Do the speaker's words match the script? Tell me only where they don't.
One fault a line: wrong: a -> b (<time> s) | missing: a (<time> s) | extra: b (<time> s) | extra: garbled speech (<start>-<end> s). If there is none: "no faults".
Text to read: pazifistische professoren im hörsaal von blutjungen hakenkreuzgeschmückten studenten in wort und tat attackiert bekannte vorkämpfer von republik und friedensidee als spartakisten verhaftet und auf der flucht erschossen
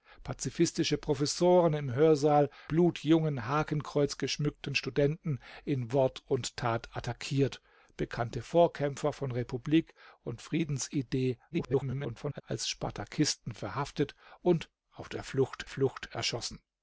missing: von (2.5 s)
extra: garbled speech (11.5-12.4 s)
extra: flucht (15.7 s)